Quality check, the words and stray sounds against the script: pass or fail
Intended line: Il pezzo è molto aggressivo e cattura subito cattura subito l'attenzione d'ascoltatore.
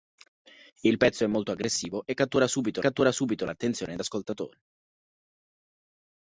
pass